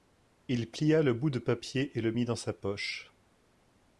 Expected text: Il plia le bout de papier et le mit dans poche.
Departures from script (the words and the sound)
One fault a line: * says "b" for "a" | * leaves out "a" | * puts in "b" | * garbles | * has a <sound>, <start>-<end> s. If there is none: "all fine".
* puts in "sa"